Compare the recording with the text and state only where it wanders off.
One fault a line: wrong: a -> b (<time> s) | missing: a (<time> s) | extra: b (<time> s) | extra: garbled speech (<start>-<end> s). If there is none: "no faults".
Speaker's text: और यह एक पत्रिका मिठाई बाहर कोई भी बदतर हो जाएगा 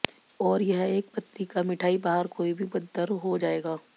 no faults